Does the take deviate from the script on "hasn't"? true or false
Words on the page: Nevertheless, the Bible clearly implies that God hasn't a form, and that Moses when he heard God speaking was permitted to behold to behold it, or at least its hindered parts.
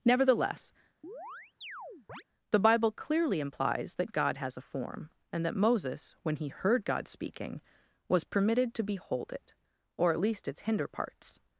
true